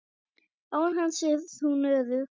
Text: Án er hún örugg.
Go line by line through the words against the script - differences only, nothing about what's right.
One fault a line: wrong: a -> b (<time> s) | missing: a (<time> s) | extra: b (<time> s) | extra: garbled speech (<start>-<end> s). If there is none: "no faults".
extra: hans (1.0 s)